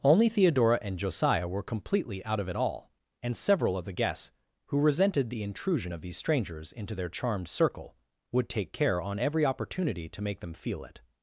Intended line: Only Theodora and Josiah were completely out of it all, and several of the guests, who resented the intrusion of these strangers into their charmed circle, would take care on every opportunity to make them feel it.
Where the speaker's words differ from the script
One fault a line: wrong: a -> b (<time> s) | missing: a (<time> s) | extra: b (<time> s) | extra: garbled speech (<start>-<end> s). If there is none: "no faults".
no faults